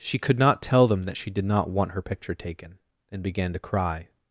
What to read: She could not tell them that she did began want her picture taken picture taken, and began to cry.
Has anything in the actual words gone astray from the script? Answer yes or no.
yes